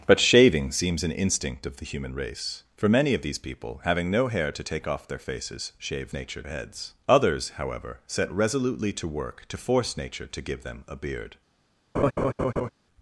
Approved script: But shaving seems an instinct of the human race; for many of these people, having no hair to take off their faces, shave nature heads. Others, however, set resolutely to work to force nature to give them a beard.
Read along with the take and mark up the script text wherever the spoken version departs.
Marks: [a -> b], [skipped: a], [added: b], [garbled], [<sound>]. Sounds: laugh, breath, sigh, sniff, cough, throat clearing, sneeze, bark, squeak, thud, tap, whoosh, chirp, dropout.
But shaving seems an instinct of the human race; for many of these people, having no hair to take off their faces, shave nature heads. Others, however, set resolutely to work to force nature to give them a beard. [laugh]